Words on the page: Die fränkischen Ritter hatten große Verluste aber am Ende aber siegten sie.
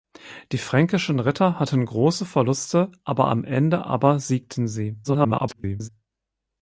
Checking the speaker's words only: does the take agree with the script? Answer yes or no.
no